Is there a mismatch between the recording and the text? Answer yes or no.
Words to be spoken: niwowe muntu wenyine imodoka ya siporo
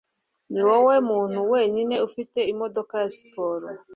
yes